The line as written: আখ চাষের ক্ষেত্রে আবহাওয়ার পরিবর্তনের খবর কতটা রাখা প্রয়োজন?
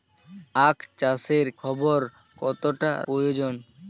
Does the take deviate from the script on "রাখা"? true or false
true